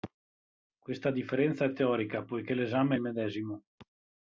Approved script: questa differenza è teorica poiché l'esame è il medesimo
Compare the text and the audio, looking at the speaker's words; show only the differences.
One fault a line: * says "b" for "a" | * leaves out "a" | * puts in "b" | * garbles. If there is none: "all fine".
all fine